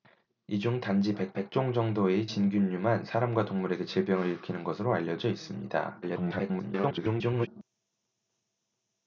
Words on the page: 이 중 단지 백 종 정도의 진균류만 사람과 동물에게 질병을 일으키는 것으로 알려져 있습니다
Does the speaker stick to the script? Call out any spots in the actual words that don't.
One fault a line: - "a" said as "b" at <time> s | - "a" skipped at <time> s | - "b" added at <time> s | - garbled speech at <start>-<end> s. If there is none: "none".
- "백" added at 1.3 s
- garbled speech at 6.0-7.5 s